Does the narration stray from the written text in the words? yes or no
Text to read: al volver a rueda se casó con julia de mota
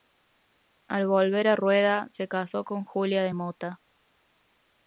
no